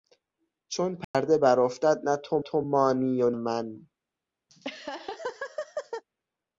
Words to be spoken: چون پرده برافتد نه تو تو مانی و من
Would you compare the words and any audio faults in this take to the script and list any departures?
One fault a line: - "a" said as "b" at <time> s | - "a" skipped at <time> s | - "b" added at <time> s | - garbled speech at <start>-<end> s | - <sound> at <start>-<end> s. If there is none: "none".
- dropout at 1.0-1.1 s
- laugh at 4.5-6.0 s